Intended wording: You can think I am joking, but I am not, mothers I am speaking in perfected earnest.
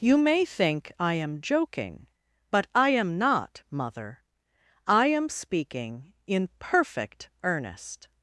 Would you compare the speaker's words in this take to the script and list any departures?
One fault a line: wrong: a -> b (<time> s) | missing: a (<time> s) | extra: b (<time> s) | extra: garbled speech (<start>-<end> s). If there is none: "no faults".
wrong: can -> may (0.2 s)
wrong: mothers -> mother (3.7 s)
wrong: perfected -> perfect (6.6 s)